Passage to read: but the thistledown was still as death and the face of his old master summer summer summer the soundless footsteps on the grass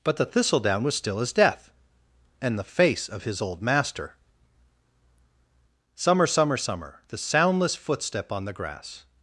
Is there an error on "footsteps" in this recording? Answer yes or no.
yes